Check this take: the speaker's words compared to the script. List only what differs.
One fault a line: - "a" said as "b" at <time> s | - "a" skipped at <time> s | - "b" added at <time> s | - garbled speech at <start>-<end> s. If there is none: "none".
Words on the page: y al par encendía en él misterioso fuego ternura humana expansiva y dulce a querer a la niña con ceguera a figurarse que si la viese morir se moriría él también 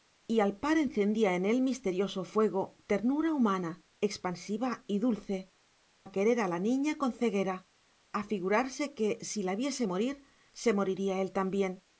none